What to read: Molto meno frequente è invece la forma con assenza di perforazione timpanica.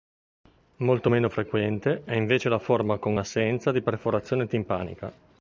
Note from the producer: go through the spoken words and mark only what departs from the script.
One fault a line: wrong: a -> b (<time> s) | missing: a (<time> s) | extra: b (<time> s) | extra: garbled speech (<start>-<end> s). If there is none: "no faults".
no faults